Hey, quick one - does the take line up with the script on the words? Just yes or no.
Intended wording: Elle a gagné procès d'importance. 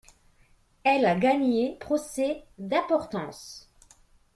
yes